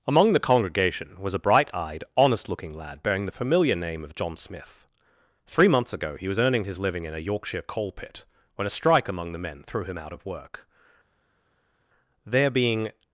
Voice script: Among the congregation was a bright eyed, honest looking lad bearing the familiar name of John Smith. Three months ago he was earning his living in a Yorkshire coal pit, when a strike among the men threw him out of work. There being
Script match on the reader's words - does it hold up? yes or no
yes